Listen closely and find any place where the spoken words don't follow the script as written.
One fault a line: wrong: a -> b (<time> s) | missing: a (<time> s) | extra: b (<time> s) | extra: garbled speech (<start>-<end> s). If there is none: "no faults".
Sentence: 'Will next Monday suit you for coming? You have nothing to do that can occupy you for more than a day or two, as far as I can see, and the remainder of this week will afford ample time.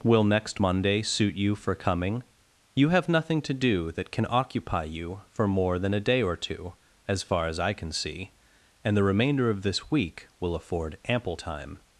no faults